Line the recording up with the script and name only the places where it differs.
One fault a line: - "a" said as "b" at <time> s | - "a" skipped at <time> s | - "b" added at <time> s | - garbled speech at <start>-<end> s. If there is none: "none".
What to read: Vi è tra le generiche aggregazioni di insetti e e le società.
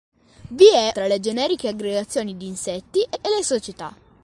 none